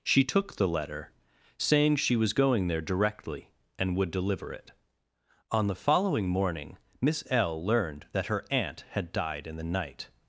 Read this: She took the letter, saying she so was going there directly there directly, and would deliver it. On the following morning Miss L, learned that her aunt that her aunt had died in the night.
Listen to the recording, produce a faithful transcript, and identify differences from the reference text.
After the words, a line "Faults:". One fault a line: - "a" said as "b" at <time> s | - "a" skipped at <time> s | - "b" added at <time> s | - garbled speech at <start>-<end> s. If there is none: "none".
She took the letter, saying she was going there directly, and would deliver it. On the following morning Miss L, learned that her aunt had died in the night.
Faults:
- "so" skipped at 2.1 s
- "there directly" skipped at 3.5 s
- "that her aunt" skipped at 8.8 s